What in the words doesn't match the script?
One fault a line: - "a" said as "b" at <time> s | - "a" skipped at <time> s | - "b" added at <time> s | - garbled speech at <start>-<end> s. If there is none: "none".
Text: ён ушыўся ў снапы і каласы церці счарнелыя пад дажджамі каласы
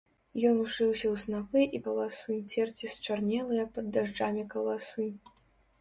none